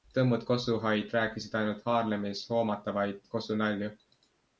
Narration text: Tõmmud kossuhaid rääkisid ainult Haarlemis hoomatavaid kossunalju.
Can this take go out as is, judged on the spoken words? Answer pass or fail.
pass